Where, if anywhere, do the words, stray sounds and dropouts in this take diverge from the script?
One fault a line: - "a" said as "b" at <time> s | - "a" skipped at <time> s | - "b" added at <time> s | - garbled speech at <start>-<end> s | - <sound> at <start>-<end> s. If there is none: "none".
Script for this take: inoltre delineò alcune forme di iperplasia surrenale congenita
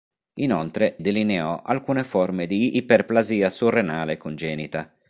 none